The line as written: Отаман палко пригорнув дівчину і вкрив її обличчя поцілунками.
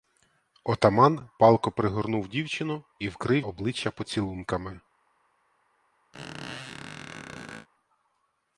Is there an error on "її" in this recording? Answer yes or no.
yes